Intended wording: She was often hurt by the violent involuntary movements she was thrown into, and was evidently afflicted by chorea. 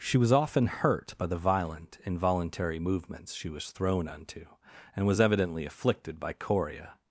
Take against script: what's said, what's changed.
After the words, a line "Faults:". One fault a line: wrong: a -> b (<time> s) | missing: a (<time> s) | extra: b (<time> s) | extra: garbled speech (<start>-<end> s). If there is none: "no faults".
She was often hurt by the violent involuntary movements she was thrown unto, and was evidently afflicted by chorea.
Faults:
wrong: into -> unto (4.1 s)